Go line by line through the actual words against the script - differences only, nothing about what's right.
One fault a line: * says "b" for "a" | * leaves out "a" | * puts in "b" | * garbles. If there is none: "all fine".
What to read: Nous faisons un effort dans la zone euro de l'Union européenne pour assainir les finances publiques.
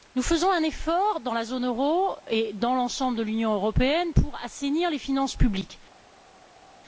* puts in "et dans l'ensemble"